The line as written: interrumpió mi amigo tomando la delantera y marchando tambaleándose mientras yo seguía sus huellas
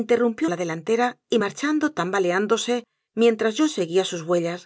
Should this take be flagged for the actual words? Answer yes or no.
yes